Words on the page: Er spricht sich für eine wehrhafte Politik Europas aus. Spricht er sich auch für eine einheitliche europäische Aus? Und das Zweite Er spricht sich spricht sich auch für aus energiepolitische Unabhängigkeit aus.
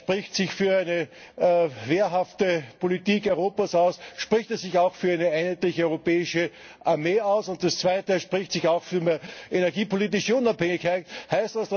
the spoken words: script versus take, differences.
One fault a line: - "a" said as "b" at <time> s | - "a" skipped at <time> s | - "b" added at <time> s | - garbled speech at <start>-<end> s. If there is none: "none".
- "Armee" added at 6.8 s
- "spricht sich" skipped at 8.7 s
- "aus" said as "mehr" at 9.0 s